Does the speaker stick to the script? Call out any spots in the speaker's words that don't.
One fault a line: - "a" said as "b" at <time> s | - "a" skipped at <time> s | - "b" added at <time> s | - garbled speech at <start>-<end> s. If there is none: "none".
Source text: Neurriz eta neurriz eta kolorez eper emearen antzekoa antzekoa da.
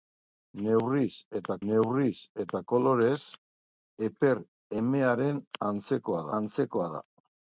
none